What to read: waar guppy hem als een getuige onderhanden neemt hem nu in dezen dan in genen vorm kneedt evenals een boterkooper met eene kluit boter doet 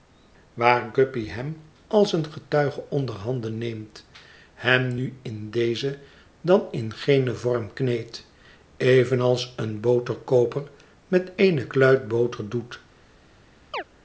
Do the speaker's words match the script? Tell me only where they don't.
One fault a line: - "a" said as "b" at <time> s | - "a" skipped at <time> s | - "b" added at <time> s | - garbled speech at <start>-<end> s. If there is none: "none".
none